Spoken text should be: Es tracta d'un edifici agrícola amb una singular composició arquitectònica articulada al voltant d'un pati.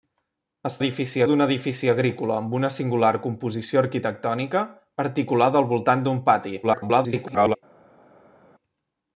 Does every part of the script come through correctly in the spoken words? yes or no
no